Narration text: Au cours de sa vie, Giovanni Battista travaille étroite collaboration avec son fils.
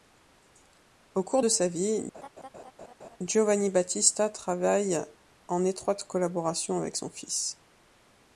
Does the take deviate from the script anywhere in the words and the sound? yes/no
yes